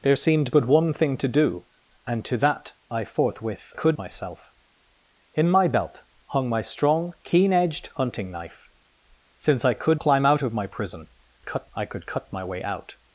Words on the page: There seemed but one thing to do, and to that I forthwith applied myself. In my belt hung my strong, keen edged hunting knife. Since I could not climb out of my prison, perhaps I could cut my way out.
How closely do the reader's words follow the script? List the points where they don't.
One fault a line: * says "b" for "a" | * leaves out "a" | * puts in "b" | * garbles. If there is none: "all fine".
* says "could" for "applied"
* leaves out "not"
* says "cut" for "perhaps"